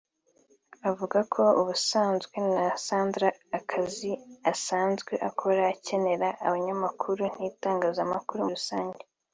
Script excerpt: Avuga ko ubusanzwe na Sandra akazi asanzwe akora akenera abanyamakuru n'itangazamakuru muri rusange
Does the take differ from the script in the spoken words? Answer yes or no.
yes